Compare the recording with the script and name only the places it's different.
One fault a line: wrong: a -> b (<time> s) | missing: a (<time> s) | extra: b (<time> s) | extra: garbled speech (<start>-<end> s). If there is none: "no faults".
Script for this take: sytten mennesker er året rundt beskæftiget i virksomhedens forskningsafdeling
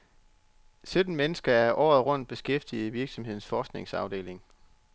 no faults